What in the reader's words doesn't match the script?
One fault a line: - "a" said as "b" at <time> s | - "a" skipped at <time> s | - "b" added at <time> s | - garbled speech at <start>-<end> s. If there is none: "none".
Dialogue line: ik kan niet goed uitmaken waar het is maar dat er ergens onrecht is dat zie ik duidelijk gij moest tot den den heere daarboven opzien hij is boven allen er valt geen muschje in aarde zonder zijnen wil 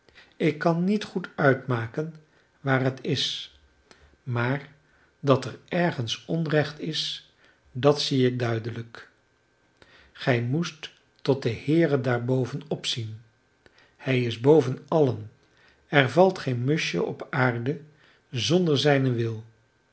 - "den" skipped at 11.6 s
- "in" said as "op" at 17.0 s